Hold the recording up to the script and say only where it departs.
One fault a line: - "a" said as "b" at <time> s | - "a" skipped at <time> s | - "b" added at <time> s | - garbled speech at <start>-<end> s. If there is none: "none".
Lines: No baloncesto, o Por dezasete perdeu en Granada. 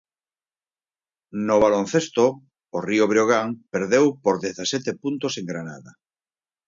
- "Río Breogán perdeu" added at 2.9 s
- "perdeu" said as "puntos" at 5.0 s